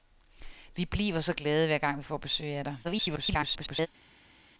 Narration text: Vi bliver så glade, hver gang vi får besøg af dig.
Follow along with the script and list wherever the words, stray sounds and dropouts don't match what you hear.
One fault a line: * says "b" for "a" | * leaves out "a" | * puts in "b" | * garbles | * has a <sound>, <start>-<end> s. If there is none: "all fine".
* garbles